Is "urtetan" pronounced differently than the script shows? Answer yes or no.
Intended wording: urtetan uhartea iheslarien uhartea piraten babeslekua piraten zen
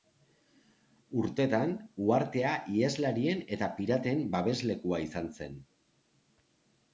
no